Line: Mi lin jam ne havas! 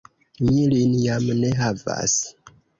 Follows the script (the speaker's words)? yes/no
yes